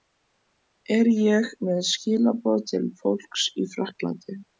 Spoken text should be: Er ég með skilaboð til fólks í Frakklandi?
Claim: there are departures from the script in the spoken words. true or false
false